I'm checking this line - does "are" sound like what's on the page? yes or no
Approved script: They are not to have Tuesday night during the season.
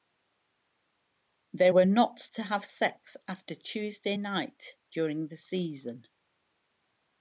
no